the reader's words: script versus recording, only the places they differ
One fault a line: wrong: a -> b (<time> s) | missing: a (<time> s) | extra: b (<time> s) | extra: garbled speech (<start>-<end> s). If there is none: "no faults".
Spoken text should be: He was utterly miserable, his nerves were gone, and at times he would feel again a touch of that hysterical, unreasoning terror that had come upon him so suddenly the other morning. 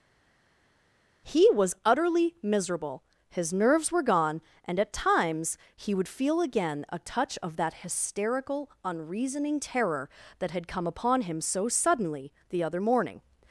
no faults